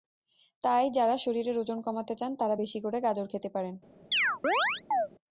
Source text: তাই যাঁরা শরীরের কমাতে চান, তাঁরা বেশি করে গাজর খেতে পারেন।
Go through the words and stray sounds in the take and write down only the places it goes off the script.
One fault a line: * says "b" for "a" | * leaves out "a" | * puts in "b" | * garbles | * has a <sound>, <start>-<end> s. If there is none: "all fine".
* puts in "ওজন"
* has a chirp, 4.1-5.1 s